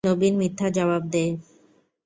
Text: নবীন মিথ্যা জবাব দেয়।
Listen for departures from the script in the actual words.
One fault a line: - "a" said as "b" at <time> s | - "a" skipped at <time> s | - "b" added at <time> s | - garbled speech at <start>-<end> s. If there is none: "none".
none